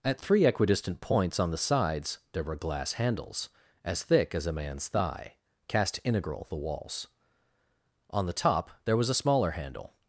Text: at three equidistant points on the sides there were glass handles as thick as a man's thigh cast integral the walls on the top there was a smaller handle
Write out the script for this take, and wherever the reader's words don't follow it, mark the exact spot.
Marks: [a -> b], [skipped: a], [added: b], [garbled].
at three equidistant points on the sides there were glass handles as thick as a man's thigh cast integral the walls on the top there was a smaller handle